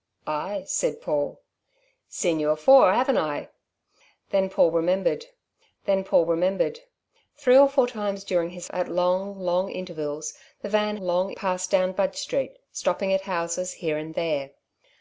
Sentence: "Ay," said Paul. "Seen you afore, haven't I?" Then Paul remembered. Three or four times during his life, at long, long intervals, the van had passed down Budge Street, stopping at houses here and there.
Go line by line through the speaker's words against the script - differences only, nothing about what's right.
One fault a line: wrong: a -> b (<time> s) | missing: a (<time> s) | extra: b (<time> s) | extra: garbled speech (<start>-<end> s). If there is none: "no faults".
extra: then Paul remembered (5.9 s)
missing: life (8.7 s)
wrong: had -> long (11.0 s)